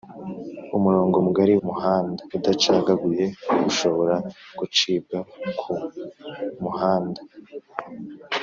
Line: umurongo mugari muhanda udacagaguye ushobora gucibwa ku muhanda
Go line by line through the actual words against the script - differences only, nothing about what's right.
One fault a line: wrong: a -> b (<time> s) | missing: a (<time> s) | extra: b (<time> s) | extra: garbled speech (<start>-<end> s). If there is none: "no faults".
no faults